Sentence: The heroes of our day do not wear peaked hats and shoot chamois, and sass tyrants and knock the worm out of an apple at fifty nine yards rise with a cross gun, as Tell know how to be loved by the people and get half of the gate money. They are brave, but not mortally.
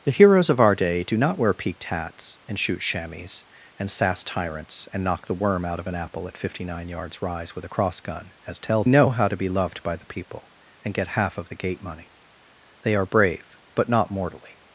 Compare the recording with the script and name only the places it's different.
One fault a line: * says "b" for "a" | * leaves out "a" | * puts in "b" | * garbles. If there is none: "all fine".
all fine